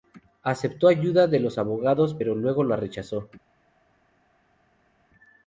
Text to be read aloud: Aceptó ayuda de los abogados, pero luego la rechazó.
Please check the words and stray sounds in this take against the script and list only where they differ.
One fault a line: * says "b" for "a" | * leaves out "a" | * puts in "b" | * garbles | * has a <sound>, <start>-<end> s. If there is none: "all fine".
all fine